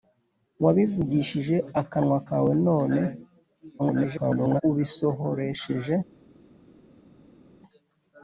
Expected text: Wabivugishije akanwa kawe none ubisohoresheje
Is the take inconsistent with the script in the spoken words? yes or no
yes